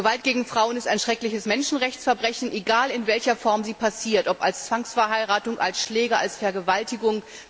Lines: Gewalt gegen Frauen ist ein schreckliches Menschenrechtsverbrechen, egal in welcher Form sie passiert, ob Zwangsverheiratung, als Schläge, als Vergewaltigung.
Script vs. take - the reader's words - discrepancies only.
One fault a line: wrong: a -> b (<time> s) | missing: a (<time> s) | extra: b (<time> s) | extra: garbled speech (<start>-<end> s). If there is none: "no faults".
extra: als (4.4 s)